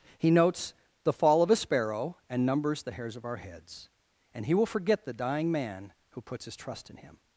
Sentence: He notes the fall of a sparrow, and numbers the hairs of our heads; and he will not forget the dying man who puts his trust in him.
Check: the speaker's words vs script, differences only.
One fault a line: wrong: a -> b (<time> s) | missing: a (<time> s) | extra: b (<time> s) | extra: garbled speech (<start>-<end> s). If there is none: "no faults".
missing: not (4.7 s)